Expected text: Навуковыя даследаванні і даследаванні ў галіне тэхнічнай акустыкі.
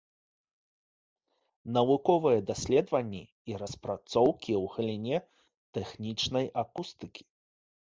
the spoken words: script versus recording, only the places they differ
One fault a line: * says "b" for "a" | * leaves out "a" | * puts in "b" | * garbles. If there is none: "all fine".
* says "распрацоўкі" for "даследаванні"